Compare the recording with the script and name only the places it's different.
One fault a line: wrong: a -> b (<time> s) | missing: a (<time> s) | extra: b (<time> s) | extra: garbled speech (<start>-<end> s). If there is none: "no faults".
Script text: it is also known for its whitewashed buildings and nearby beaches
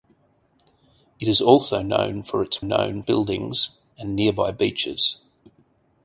wrong: whitewashed -> known (2.6 s)